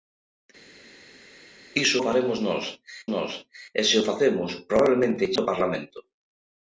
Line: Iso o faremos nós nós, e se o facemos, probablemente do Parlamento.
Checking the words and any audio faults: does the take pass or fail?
pass